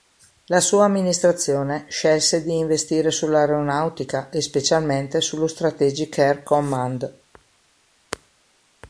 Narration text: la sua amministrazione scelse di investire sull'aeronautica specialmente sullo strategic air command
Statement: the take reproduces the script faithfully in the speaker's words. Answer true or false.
false